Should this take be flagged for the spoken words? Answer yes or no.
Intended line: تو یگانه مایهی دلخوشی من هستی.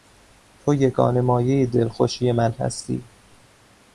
no